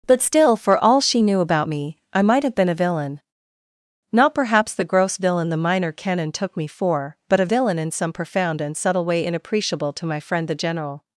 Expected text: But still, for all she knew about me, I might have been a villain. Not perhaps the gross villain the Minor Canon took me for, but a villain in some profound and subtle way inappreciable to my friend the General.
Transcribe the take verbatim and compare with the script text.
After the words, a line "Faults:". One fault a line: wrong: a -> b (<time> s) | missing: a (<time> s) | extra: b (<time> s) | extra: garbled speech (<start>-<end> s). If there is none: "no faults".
But still, for all she knew about me, I might have been a villain. Not perhaps the gross villain the Minor Canon took me for, but a villain in some profound and subtle way inappreciable to my friend the General.
Faults:
no faults